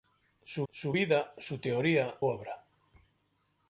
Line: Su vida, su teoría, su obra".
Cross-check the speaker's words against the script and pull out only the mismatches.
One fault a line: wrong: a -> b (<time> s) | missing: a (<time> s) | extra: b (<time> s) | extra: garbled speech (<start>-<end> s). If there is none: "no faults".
extra: su (0.7 s)
missing: su (2.2 s)